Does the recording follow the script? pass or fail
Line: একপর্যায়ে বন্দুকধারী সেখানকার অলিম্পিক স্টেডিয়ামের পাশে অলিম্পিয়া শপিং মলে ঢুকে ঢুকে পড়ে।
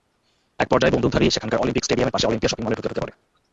pass